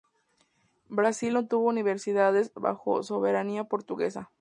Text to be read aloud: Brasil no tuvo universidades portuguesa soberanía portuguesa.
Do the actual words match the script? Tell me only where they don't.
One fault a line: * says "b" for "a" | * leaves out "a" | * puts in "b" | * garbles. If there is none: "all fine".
* says "bajo" for "portuguesa"